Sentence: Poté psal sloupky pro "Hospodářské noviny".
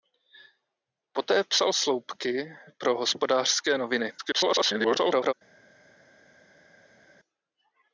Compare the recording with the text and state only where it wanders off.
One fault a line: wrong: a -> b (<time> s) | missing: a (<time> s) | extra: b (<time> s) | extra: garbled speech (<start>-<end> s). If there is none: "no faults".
extra: garbled speech (4.2-5.3 s)